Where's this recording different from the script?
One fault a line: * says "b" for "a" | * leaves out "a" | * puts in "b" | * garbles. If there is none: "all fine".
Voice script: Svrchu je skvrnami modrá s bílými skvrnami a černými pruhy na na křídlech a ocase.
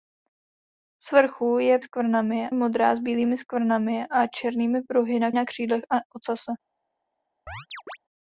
all fine